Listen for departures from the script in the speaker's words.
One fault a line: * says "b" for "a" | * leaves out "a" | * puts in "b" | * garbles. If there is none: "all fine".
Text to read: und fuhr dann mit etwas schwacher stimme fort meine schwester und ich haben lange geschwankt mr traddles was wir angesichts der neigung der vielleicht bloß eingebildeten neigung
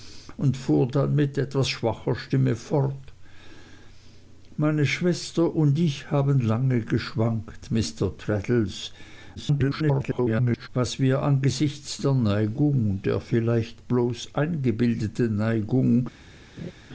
* garbles